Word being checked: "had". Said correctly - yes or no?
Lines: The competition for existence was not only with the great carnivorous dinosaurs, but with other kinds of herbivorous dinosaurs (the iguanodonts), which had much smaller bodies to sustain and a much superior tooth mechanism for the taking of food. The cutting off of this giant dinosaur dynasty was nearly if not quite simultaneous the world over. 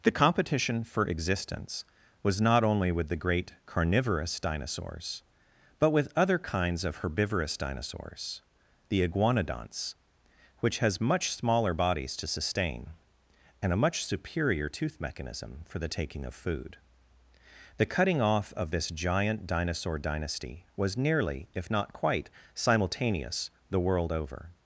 no